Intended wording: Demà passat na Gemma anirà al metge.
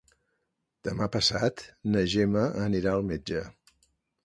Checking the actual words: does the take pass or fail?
pass